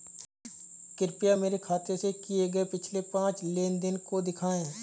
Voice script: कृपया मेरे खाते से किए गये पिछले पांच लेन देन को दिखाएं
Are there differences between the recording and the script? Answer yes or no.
no